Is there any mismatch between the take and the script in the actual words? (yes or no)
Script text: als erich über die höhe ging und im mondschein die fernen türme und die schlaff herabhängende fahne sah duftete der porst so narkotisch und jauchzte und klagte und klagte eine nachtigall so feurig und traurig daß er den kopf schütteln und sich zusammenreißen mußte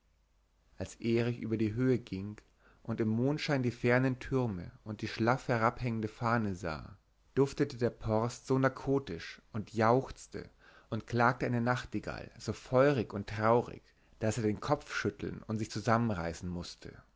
yes